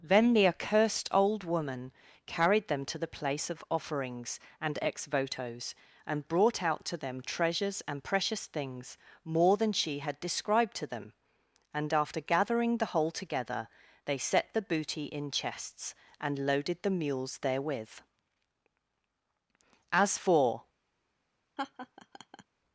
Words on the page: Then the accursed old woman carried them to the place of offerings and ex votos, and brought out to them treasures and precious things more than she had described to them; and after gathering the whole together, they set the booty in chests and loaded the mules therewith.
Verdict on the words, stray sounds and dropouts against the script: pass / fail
fail